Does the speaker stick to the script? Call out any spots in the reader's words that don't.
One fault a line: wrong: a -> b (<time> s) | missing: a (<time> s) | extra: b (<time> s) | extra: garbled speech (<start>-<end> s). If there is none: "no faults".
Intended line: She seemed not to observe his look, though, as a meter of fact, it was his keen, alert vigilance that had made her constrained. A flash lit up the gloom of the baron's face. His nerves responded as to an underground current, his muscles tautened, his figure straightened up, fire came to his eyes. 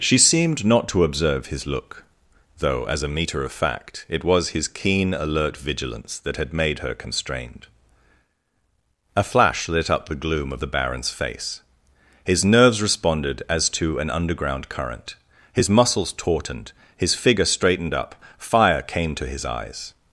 no faults